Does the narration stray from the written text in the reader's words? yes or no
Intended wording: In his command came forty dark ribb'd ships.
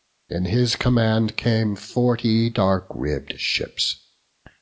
no